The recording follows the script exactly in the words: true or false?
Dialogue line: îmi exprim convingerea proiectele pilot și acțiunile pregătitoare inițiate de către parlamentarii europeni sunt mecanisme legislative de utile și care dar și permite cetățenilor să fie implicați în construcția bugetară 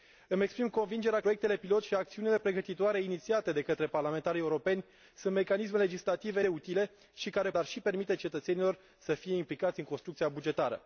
true